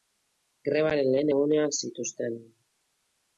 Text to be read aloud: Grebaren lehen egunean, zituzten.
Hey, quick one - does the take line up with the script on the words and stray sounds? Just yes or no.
yes